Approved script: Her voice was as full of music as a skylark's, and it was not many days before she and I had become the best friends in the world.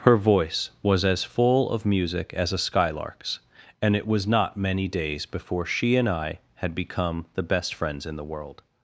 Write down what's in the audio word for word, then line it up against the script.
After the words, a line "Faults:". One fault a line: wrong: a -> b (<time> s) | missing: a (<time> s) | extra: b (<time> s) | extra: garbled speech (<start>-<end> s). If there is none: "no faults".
Her voice was as full of music as a skylark's, and it was not many days before she and I had become the best friends in the world.
Faults:
no faults